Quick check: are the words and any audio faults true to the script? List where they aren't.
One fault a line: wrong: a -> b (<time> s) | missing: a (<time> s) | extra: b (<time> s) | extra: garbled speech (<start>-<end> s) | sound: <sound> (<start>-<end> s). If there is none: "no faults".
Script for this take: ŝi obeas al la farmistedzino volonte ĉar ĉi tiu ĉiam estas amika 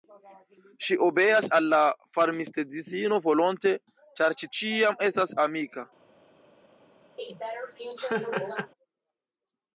missing: tiu (4.5 s)
sound: laugh (7.2-8.7 s)